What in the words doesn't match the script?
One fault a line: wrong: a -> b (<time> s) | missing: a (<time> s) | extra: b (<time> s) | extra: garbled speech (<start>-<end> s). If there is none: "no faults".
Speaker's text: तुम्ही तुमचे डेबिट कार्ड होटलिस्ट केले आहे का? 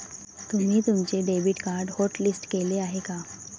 no faults